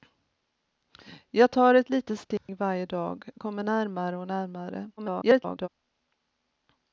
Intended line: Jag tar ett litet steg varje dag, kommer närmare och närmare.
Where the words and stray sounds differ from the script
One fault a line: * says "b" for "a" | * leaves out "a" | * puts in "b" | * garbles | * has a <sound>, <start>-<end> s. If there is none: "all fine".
* has a dropout, 2.4-2.5 s
* garbles